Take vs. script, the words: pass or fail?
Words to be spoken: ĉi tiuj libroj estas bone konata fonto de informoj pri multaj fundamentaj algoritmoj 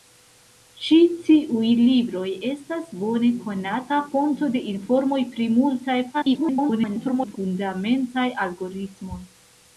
fail